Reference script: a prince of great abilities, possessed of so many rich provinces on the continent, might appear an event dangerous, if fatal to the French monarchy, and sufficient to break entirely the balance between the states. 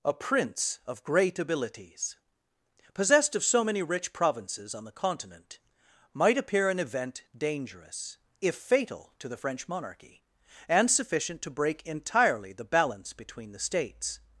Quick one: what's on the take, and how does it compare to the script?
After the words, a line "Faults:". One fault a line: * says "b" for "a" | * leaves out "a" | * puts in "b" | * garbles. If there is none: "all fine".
a prince of great abilities, possessed of so many rich provinces on the continent, might appear an event dangerous, if fatal to the French monarchy, and sufficient to break entirely the balance between the states.
Faults:
all fine